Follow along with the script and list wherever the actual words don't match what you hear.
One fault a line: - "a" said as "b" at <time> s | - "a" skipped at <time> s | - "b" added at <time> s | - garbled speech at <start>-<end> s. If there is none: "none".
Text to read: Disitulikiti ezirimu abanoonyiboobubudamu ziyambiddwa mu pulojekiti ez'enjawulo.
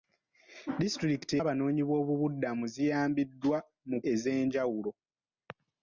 - "ezirimu" skipped at 1.3 s
- "pulojekiti" skipped at 4.0 s